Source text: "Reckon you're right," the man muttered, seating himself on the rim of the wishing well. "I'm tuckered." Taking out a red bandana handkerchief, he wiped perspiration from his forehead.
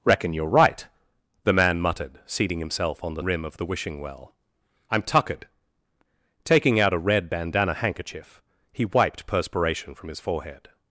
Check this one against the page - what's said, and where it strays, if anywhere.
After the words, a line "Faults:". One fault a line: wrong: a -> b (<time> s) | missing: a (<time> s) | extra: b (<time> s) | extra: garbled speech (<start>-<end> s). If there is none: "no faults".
"Reckon you're right," the man muttered, seating himself on the rim of the wishing well. "I'm tuckered." Taking out a red bandana handkerchief, he wiped perspiration from his forehead.
Faults:
no faults